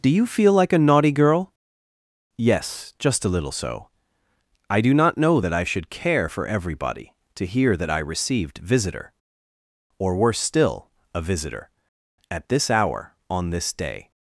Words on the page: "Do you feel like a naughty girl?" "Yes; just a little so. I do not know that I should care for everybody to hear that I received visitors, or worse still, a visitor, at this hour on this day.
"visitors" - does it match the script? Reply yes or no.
no